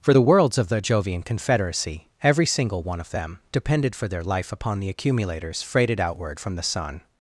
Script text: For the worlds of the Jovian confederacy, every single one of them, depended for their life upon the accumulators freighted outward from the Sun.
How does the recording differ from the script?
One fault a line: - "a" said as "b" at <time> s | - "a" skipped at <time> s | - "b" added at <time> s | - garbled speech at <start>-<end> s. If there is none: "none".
none